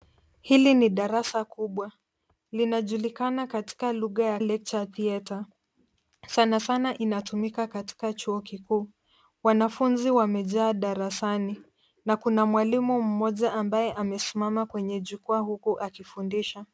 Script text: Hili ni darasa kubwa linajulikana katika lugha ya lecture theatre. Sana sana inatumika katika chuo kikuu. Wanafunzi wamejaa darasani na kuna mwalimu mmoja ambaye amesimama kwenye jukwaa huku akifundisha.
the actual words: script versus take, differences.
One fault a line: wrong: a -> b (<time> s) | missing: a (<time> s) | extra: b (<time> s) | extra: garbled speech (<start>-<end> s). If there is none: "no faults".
no faults